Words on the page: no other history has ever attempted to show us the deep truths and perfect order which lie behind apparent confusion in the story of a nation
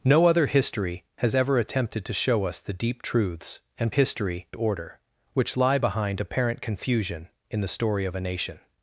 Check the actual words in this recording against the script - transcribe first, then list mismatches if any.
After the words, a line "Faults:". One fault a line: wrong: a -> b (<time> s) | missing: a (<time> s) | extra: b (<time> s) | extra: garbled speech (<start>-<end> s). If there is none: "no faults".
no other history has ever attempted to show us the deep truths and history order which lie behind apparent confusion in the story of a nation
Faults:
wrong: perfect -> history (3.9 s)